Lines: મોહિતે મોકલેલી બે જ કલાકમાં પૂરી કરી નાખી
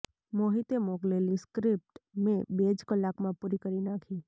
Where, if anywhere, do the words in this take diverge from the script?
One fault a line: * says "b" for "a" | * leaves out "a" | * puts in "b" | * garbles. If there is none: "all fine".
* puts in "સ્ક્રિપ્ટ મેં"